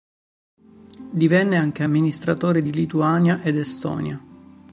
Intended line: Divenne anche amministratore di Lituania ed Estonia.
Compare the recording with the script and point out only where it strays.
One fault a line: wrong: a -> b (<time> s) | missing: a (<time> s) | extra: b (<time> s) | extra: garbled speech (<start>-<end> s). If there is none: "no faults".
no faults